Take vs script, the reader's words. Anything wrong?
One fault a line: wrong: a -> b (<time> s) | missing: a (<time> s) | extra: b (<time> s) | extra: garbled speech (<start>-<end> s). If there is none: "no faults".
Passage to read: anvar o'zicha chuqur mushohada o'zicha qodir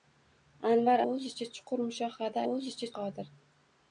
no faults